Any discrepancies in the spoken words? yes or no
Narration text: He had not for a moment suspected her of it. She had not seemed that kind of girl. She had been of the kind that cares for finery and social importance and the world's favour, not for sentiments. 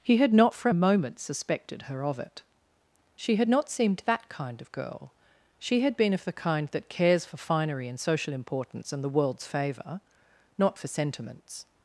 no